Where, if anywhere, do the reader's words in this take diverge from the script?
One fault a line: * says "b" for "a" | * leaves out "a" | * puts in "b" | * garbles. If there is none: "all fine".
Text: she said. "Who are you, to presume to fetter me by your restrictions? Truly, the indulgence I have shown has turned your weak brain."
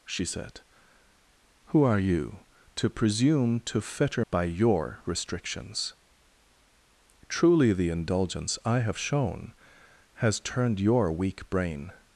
* leaves out "me"